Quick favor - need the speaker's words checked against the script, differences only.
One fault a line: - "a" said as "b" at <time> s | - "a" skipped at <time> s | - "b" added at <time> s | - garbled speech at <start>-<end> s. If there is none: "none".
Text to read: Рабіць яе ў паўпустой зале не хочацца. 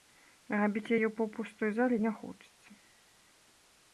none